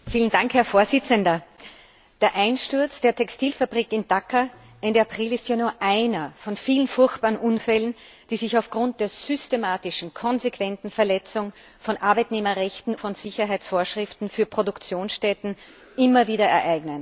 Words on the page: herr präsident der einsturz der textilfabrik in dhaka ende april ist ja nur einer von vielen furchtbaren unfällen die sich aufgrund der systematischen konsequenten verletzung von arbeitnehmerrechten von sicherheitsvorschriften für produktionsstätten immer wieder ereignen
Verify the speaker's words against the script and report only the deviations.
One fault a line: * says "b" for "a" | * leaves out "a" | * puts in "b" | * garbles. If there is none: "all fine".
all fine